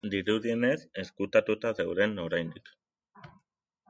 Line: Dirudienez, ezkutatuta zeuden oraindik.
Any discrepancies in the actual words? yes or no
no